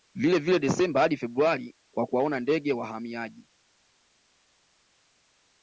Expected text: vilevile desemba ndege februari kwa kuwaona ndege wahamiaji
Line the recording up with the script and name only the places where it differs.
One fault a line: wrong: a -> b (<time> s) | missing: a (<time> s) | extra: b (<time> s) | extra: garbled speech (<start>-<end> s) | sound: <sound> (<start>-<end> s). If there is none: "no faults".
wrong: ndege -> hadi (1.0 s)